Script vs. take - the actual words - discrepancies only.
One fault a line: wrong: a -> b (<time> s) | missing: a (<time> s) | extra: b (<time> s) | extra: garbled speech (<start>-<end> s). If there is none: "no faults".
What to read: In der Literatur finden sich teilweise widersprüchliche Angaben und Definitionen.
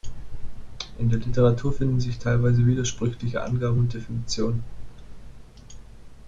no faults